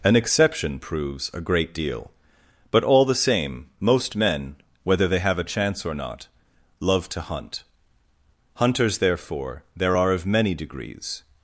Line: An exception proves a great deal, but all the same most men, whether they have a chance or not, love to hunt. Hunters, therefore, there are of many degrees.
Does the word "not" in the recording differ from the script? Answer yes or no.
no